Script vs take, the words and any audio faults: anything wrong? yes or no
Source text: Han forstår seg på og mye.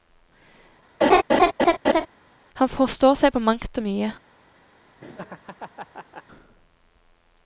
yes